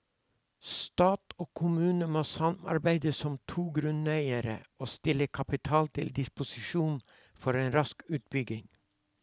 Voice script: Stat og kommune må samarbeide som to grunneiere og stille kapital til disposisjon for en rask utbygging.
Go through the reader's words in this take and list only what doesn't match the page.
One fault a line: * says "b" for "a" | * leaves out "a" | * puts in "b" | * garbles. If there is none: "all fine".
all fine